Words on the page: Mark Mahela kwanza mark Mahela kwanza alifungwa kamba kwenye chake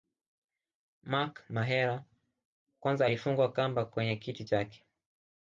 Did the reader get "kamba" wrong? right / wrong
right